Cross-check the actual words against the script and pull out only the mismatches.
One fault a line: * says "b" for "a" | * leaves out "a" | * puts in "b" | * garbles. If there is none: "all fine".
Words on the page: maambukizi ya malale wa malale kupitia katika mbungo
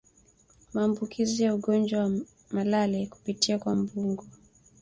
* says "ugonjwa" for "malale"
* says "kwa" for "katika"